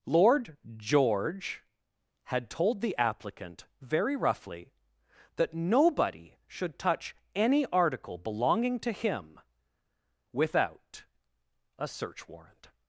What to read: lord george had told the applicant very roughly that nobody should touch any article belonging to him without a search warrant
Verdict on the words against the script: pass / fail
pass